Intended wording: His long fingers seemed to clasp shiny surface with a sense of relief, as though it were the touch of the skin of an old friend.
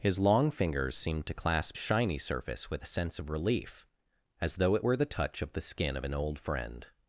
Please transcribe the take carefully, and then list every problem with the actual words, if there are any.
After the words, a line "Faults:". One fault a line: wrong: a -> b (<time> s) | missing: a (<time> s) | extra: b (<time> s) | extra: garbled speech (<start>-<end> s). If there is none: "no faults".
His long fingers seemed to clasp shiny surface with a sense of relief, as though it were the touch of the skin of an old friend.
Faults:
no faults